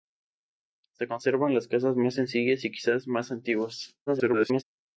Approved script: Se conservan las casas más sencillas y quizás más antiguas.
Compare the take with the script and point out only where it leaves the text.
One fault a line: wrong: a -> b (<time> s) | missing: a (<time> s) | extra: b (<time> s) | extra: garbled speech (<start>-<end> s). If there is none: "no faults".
extra: garbled speech (4.1-4.6 s)